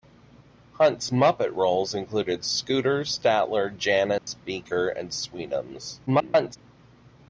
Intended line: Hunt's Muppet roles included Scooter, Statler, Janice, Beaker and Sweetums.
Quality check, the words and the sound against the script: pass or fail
fail